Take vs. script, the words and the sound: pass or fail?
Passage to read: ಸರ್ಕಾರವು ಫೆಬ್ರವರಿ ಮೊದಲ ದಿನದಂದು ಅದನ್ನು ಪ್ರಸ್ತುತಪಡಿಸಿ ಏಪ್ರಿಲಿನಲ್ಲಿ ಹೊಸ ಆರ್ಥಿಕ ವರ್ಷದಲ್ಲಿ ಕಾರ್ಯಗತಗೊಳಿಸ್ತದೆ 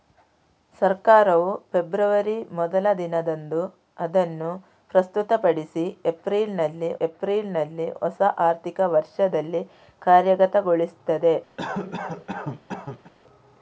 fail